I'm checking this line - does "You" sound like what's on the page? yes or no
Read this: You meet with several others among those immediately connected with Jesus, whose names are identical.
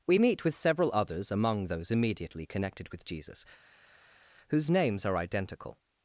no